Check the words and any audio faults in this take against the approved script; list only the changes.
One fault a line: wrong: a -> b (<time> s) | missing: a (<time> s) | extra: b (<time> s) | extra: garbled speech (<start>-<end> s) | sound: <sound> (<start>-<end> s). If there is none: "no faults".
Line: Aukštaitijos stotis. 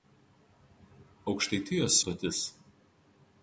no faults